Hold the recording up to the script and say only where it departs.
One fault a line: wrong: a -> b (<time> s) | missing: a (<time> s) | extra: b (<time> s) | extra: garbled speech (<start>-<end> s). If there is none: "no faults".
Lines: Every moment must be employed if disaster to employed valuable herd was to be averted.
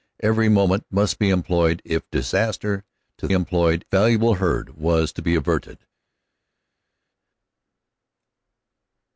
no faults